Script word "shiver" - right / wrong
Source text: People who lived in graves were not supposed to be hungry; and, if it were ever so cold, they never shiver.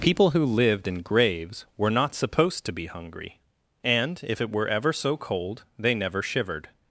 wrong